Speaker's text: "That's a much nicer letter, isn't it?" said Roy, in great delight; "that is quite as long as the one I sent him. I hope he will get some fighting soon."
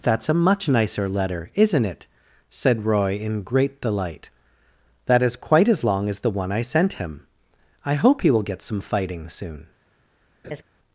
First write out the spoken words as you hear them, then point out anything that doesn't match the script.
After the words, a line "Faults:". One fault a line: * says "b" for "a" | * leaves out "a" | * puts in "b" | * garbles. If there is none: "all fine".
"That's a much nicer letter, isn't it?" said Roy, in great delight; "that is quite as long as the one I sent him. I hope he will get some fighting soon."
Faults:
all fine